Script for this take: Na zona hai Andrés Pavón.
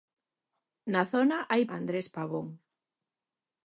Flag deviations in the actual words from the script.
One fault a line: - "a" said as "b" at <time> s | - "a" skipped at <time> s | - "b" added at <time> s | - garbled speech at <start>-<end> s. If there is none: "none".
none